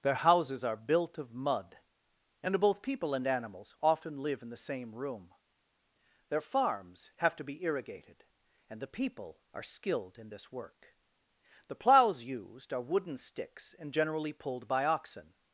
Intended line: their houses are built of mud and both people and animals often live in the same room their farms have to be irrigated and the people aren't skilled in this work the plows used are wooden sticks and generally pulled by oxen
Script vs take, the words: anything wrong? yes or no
yes